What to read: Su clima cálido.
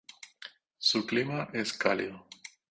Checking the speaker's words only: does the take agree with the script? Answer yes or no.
no